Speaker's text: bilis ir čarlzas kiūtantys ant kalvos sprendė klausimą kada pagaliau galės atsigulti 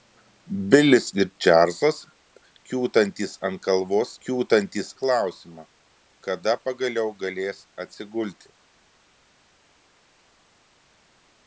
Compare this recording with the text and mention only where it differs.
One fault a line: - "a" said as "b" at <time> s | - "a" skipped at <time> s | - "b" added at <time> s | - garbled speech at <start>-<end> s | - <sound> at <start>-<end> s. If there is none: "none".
- "sprendė" said as "kiūtantys" at 4.3 s